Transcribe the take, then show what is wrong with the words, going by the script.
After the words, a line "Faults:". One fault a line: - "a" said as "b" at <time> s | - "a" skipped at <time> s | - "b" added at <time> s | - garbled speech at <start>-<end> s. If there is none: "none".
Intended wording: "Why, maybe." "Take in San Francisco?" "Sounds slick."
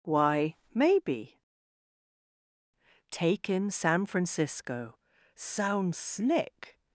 "Why, maybe." "Take in San Francisco?" "Sounds slick."
Faults:
none